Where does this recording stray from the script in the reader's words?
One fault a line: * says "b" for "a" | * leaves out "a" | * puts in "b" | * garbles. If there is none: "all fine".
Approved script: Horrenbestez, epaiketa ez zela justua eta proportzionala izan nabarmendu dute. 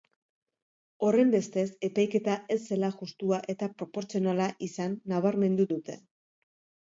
all fine